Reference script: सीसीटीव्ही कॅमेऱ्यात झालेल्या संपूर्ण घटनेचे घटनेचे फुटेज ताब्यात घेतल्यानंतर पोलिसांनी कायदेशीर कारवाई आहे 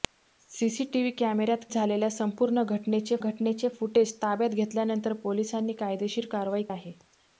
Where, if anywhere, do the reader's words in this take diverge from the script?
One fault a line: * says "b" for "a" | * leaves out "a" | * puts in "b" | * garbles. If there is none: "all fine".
all fine